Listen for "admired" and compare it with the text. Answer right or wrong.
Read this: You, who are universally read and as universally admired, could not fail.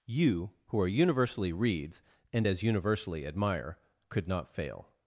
wrong